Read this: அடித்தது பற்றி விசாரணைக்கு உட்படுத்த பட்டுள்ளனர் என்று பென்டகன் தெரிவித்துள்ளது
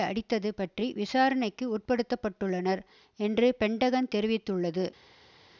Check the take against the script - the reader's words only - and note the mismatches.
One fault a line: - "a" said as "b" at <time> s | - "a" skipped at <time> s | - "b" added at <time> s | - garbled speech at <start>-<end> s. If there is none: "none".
none